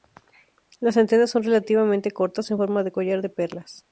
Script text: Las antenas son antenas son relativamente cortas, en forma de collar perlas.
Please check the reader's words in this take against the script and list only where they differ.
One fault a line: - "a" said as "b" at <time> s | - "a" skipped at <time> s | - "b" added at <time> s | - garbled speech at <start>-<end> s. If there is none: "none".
- "antenas son" skipped at 1.4 s
- "de" added at 3.2 s